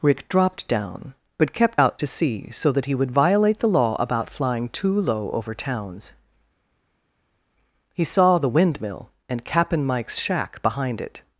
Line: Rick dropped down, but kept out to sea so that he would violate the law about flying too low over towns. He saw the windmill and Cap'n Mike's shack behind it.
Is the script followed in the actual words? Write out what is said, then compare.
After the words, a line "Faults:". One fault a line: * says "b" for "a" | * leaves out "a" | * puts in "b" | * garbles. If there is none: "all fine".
Rick dropped down, but kept out to sea so that he would violate the law about flying too low over towns. He saw the windmill and Cap'n Mike's shack behind it.
Faults:
all fine